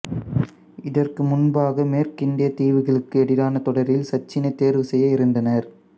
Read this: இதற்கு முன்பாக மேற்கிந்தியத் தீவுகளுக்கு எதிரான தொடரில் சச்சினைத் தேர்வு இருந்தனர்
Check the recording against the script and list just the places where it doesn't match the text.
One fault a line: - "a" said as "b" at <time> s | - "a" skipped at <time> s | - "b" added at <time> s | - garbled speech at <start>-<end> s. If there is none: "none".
- "செய்ய" added at 4.8 s